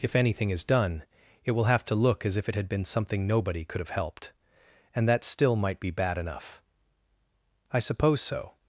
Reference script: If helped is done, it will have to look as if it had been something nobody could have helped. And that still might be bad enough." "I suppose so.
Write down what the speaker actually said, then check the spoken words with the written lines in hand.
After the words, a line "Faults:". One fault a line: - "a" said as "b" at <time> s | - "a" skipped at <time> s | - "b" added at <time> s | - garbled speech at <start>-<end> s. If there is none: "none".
If anything is done, it will have to look as if it had been something nobody could have helped. And that still might be bad enough." "I suppose so.
Faults:
- "helped" said as "anything" at 0.1 s